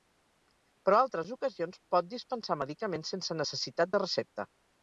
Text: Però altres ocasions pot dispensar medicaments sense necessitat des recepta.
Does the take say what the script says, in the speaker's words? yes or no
no